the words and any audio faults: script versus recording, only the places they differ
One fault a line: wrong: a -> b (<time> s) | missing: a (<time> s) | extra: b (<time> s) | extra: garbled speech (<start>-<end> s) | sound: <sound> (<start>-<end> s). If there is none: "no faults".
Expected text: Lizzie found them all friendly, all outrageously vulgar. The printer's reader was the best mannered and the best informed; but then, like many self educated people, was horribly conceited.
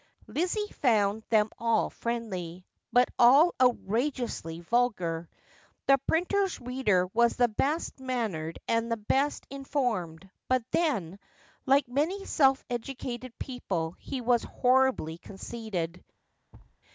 extra: but (2.9 s)
extra: he (14.0 s)
sound: thud (16.5-16.8 s)